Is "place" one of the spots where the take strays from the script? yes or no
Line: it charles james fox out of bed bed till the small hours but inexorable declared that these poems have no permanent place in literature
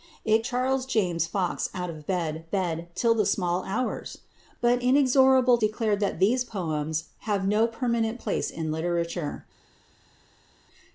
no